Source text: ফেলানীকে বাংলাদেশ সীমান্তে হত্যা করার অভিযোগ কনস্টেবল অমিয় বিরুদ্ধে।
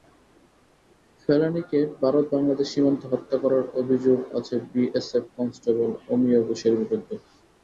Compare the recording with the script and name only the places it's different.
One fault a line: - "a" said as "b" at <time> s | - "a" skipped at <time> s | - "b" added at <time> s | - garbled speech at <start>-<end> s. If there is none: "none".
- "ভারত" added at 2.0 s
- "আছে বিএসএফ" added at 4.4 s
- "ঘোষের" added at 6.5 s